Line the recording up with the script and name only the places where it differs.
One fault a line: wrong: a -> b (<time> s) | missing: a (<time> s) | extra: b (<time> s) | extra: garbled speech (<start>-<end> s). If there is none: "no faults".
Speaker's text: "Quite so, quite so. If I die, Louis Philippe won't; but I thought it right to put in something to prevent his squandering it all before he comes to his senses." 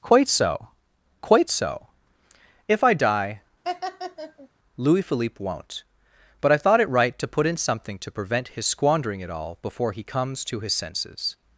no faults